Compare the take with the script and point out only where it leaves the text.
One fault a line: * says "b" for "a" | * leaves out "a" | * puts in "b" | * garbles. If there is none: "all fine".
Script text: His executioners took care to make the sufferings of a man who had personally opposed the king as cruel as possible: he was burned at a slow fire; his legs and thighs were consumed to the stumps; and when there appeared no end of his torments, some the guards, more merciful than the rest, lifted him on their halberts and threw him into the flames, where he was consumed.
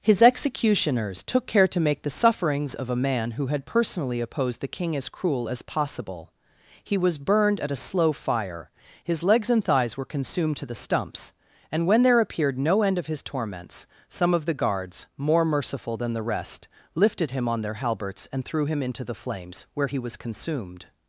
* puts in "of"